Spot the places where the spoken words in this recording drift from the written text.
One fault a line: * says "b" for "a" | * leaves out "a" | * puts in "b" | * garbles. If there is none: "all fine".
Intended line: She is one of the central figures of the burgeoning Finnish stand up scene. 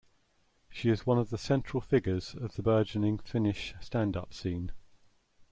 all fine